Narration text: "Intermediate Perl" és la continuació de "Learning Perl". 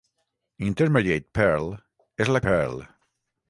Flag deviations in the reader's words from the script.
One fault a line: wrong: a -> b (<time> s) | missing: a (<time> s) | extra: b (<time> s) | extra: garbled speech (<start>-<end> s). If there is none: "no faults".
missing: continuació de Learning (2.4 s)